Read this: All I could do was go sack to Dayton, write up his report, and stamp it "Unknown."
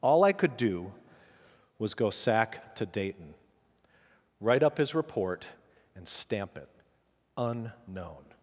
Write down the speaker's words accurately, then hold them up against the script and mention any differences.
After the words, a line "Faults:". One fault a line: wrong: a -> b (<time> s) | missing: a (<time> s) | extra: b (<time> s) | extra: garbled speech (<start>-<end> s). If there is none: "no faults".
All I could do was go sack to Dayton, write up his report, and stamp it "Unknown."
Faults:
no faults